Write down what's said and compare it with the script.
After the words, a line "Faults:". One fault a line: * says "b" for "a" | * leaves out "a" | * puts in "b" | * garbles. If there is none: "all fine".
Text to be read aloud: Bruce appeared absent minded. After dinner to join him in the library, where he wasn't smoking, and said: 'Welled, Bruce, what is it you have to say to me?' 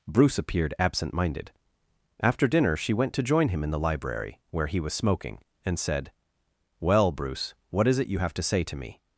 Bruce appeared absent minded. After dinner she went to join him in the library, where he was smoking, and said: 'Well, Bruce, what is it you have to say to me?'
Faults:
* puts in "she went"
* says "was" for "wasn't"
* says "Well" for "Welled"